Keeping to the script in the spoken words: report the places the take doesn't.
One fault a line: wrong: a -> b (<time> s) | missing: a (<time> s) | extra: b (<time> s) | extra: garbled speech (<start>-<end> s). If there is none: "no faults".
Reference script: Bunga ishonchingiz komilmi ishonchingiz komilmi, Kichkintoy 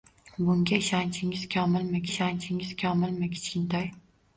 no faults